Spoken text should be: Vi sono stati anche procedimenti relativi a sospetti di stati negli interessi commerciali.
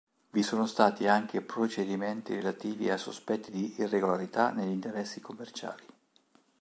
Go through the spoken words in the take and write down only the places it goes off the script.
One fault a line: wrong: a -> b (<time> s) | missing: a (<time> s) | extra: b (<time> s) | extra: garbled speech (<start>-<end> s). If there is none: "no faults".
wrong: stati -> irregolarità (3.8 s)